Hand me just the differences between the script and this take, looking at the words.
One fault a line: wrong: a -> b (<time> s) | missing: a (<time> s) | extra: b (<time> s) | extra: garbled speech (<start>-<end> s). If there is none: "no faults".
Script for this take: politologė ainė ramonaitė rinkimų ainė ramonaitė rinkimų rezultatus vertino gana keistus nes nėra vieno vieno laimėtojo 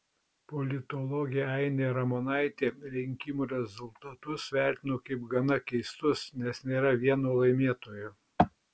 missing: ainė ramonaitė rinkimų (3.5 s)
extra: kaip (5.1 s)
missing: vieno (7.4 s)